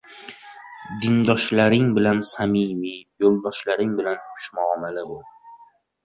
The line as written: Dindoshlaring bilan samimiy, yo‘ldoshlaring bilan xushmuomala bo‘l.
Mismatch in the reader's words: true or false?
false